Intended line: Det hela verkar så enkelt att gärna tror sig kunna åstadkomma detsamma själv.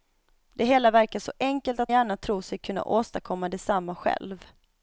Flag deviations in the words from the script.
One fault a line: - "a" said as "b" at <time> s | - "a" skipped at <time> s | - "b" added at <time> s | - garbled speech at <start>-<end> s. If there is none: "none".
none